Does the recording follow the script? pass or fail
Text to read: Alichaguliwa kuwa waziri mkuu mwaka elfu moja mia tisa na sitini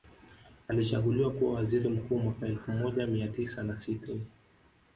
pass